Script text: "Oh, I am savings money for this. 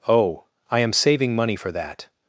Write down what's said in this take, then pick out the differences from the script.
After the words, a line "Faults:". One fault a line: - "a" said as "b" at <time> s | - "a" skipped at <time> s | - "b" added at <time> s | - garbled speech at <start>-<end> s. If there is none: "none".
"Oh, I am saving money for that.
Faults:
- "savings" said as "saving" at 0.9 s
- "this" said as "that" at 1.7 s